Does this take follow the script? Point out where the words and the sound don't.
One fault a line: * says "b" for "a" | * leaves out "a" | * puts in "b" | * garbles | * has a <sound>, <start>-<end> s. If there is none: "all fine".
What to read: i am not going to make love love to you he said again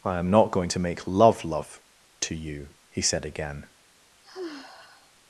* has a sigh, 4.2-5.1 s